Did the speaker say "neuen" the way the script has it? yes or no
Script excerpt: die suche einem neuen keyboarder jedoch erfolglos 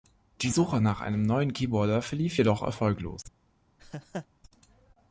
yes